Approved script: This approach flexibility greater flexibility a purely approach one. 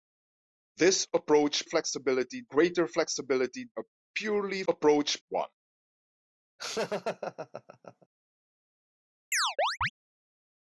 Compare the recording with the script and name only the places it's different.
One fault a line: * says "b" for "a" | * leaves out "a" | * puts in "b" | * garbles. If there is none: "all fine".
all fine